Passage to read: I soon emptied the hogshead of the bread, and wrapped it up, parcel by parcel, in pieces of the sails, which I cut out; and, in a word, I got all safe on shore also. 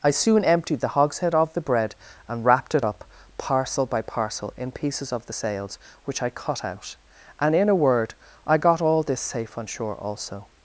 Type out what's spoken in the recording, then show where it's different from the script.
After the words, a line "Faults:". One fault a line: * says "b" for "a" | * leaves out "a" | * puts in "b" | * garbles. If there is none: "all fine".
I soon emptied the hogshead of the bread, and wrapped it up, parcel by parcel, in pieces of the sails, which I cut out; and, in a word, I got all this safe on shore also.
Faults:
* puts in "this"